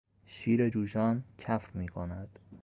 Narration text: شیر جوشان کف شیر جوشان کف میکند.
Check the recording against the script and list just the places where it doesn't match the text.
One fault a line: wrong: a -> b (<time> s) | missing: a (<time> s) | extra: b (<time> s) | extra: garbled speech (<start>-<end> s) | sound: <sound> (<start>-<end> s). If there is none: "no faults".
missing: شیر جوشان کف (1.7 s)